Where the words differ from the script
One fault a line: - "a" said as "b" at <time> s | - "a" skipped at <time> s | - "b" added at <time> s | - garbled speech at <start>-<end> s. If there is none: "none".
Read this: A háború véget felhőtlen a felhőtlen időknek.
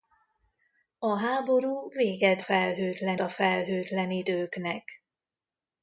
none